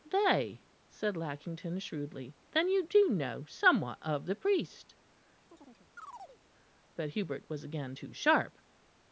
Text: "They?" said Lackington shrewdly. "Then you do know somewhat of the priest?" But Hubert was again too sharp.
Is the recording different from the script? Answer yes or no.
no